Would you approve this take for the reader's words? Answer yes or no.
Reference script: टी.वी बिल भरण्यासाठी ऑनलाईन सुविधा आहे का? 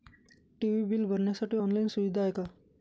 yes